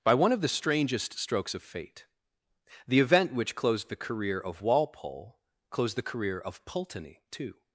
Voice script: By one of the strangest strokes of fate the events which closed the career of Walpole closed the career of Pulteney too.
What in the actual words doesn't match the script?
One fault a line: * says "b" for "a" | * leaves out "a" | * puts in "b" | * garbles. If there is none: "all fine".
* says "event" for "events"